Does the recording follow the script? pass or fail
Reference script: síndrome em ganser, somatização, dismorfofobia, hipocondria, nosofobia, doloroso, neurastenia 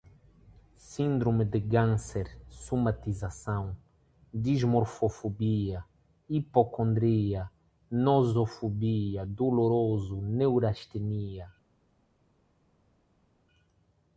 fail